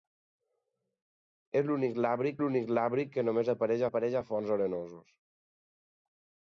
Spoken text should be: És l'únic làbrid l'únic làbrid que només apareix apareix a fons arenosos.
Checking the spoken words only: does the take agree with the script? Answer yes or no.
yes